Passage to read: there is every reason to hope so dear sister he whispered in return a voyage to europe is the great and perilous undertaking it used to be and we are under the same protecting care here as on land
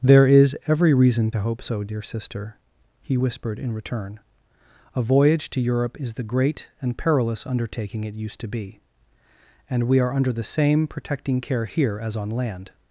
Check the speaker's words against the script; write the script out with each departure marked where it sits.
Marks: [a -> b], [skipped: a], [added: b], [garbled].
there is every reason to hope so dear sister he whispered in return a voyage to europe is the great and perilous undertaking it used to be and we are under the same protecting care here as on land